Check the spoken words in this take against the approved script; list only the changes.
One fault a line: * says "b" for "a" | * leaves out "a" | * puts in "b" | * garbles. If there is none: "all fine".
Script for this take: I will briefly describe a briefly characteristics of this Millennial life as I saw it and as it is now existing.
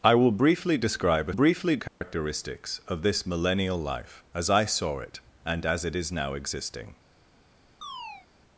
all fine